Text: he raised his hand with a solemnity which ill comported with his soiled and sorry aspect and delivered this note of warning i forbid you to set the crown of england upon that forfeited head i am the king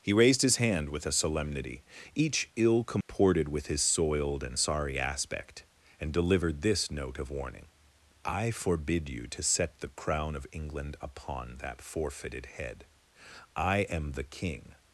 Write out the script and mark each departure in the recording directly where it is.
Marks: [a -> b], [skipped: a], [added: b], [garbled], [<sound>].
he raised his hand with a solemnity [which -> each] ill comported [dropout] with his soiled and sorry aspect and delivered this note of warning i forbid you to set the crown of england upon that forfeited head i am the king